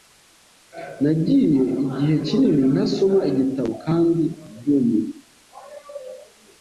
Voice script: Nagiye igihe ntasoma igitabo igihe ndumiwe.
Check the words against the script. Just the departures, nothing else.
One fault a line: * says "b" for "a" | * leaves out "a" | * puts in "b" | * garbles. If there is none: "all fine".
* puts in "kinini"
* says "kandi" for "igihe"